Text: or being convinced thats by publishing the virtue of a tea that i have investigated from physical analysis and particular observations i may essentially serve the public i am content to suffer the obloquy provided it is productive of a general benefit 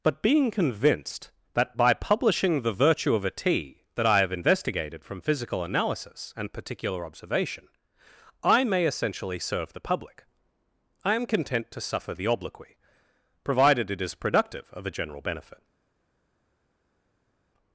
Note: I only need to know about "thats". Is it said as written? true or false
false